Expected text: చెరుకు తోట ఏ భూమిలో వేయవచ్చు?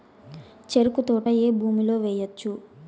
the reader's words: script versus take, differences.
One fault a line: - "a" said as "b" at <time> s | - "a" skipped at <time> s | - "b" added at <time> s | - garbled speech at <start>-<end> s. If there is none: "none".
none